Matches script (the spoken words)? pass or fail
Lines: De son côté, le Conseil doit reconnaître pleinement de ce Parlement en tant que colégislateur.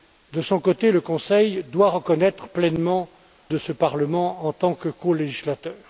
pass